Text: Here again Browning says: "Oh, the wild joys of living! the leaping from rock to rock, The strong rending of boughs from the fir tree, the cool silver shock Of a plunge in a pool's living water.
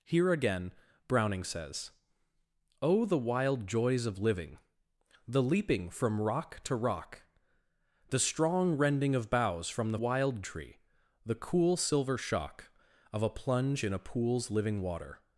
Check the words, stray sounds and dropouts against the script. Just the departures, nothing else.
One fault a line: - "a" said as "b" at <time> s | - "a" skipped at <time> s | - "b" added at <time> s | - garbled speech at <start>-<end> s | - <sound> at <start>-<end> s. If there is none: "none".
- "fir" said as "wild" at 9.9 s